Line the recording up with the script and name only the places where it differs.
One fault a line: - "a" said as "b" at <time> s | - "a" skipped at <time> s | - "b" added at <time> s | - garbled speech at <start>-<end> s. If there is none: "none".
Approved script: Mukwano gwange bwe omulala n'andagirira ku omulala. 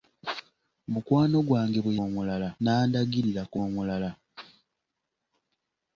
none